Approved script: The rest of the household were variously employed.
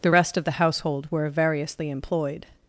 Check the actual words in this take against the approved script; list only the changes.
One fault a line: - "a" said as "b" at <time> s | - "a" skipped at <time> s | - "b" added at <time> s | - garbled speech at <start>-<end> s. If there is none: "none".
none